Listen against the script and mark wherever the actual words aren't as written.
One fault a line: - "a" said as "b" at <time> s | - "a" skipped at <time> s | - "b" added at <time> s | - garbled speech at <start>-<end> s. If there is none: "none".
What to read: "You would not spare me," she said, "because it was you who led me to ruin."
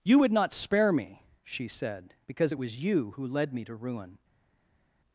none